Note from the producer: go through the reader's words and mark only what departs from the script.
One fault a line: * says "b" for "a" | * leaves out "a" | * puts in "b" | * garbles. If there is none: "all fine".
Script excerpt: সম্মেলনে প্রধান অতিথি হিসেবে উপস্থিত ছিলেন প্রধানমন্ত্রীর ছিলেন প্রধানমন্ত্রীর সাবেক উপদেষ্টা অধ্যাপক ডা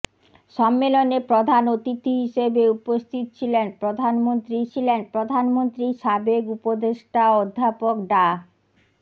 all fine